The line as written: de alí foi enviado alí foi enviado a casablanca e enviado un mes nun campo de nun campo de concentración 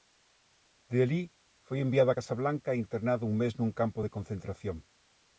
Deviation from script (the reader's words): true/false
true